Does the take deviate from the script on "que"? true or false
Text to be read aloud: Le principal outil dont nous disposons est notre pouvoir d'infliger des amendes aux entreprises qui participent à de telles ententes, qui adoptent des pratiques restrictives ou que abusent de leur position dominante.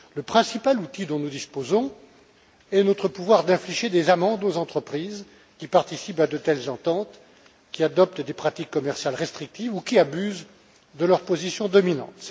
true